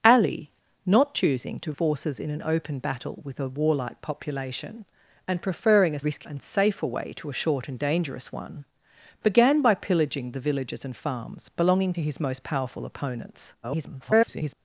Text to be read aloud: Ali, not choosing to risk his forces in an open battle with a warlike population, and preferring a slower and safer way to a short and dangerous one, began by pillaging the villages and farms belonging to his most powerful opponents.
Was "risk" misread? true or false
true